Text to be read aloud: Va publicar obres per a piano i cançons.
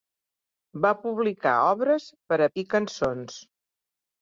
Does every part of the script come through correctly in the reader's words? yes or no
no